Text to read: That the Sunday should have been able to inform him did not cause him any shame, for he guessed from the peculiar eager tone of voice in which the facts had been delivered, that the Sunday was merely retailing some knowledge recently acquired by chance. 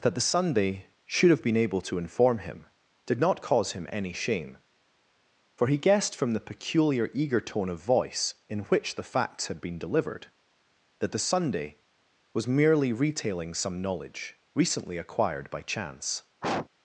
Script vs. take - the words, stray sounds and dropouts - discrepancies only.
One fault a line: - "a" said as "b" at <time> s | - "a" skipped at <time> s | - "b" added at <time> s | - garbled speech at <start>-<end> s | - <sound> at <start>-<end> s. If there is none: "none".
- sniff at 16.4-16.7 s